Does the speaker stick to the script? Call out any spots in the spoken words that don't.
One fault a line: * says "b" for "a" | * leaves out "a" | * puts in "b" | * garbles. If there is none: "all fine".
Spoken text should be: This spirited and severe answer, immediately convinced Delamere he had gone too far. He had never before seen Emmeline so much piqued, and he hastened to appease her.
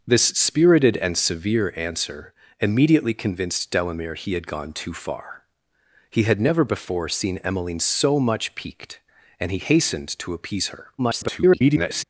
* garbles